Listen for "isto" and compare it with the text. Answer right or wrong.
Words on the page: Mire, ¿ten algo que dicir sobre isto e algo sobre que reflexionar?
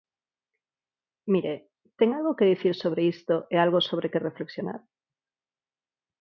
right